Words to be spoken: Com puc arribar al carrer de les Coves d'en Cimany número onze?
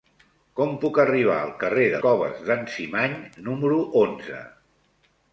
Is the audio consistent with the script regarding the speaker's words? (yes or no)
no